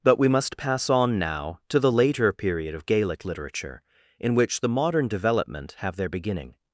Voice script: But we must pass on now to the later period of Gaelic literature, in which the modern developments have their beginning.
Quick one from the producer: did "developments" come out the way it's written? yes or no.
no